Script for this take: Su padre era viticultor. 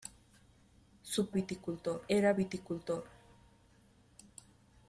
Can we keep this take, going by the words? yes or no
no